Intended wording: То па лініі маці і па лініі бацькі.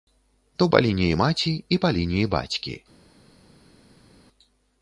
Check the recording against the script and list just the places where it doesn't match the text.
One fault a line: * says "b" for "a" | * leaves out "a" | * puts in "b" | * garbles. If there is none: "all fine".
all fine